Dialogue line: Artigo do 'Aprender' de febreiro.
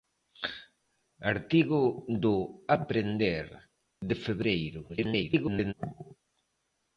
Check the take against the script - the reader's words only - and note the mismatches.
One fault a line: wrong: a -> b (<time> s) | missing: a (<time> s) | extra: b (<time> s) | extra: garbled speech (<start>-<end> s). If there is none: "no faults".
extra: garbled speech (4.9-5.7 s)